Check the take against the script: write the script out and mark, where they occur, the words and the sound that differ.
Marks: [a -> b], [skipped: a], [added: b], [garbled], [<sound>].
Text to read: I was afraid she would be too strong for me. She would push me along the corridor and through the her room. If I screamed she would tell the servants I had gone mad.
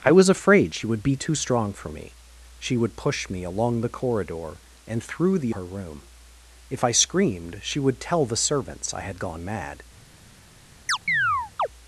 I was afraid she would be too strong for me. She would push me along the corridor and through the her room. If I screamed she would tell the servants I had gone mad. [chirp]